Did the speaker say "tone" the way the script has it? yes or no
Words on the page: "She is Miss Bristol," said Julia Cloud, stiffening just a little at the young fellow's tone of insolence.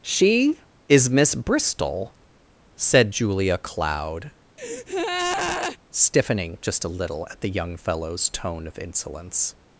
yes